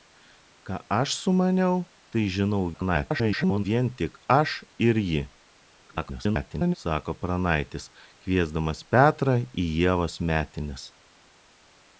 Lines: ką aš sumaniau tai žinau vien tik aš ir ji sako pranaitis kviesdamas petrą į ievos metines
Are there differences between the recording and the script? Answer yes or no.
yes